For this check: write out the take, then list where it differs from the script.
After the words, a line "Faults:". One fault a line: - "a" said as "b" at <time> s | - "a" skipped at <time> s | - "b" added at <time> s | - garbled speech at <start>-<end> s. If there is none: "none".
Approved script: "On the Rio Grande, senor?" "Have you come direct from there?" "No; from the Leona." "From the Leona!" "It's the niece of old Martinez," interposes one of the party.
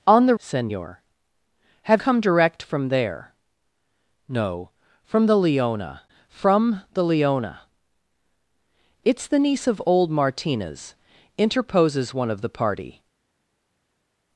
"On the Senor?" "Have come direct from there?" "No; from the Leona." "From the Leona!" "It's the niece of old Martinez," interposes one of the party.
Faults:
- "Rio Grande" skipped at 0.3 s
- "you" skipped at 2.0 s